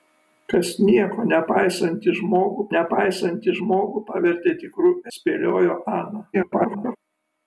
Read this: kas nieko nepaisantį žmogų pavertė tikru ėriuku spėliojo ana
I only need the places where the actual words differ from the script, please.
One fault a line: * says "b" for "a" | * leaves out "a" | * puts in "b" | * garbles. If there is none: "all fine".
* puts in "nepaisantį žmogų"
* leaves out "ėriuku"
* garbles